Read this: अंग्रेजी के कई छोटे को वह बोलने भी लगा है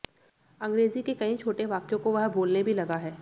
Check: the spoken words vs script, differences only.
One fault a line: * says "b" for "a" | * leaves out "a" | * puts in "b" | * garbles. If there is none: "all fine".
* puts in "वाक्यों"